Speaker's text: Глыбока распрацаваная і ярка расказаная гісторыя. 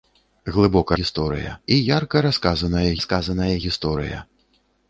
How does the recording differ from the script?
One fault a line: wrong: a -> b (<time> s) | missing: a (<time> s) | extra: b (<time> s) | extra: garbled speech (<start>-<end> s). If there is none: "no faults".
wrong: распрацаваная -> гісторыя (1.0 s)
extra: расказаная (3.0 s)